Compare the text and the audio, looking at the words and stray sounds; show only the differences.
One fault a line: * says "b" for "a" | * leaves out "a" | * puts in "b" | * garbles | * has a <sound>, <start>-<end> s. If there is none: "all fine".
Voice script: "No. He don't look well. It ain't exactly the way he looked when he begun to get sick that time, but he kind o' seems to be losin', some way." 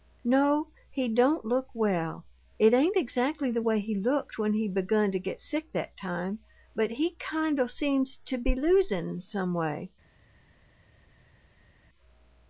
all fine